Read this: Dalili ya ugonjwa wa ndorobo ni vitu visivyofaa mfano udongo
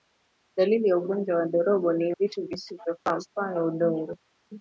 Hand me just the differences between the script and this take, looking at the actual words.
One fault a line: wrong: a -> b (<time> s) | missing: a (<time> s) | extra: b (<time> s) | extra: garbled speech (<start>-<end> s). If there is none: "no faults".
no faults